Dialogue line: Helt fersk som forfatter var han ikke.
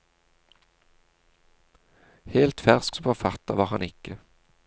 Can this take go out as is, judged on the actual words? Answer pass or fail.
pass